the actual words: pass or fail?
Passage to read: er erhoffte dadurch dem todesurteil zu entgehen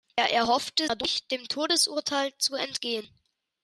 pass